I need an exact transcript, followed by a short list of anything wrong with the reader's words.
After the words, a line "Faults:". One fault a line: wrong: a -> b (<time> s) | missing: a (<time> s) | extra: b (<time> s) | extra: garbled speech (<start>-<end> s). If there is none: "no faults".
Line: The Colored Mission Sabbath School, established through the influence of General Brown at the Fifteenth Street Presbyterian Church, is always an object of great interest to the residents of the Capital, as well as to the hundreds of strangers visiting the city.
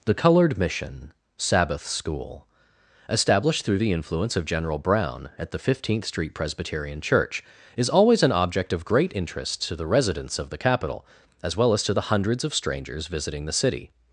The Colored Mission Sabbath School, established through the influence of General Brown at the Fifteenth Street Presbyterian Church, is always an object of great interest to the residents of the Capital, as well as to the hundreds of strangers visiting the city.
Faults:
no faults